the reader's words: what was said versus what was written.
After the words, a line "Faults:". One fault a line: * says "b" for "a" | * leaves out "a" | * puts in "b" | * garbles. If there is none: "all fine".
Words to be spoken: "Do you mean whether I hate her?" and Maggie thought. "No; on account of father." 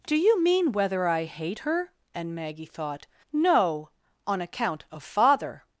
"Do you mean whether I hate her?" and Maggie thought. "No; on account of father."
Faults:
all fine